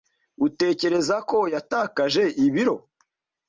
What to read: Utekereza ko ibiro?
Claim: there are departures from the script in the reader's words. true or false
true